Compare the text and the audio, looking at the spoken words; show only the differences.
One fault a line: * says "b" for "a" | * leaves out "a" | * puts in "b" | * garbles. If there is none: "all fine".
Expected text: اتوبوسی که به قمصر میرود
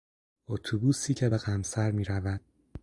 all fine